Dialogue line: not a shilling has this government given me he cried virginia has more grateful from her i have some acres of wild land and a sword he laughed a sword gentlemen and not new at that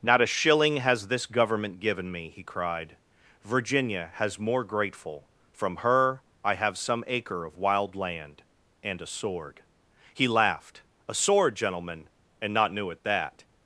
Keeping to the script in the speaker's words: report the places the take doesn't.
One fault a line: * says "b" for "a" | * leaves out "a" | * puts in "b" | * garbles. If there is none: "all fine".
* says "acre" for "acres"